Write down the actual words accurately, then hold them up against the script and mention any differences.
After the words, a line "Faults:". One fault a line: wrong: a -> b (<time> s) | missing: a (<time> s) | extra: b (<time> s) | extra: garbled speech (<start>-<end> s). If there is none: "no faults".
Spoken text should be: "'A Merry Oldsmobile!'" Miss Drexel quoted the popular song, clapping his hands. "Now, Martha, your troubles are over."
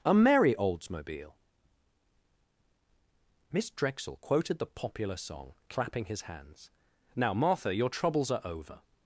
"'A Merry Oldsmobile!'" Miss Drexel quoted the popular song, clapping his hands. "Now, Martha, your troubles are over."
Faults:
no faults